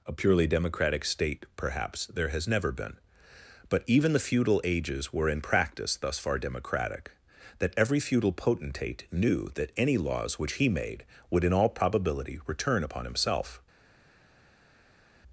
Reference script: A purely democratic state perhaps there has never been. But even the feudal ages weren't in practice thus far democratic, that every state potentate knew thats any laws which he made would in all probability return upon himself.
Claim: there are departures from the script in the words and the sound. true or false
true